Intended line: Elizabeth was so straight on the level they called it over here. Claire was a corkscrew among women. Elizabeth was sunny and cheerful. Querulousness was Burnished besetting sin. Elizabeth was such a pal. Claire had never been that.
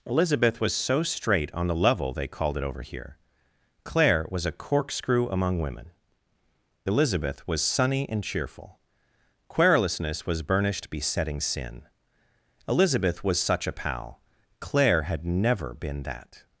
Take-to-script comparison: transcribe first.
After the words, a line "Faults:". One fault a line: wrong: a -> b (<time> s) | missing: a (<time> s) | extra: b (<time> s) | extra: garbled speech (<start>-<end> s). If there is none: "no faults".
Elizabeth was so straight on the level they called it over here. Claire was a corkscrew among women. Elizabeth was sunny and cheerful. Querulousness was Burnished besetting sin. Elizabeth was such a pal. Claire had never been that.
Faults:
no faults